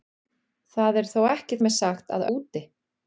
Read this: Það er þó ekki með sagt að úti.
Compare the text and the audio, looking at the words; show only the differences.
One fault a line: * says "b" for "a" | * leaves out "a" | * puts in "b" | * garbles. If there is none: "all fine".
all fine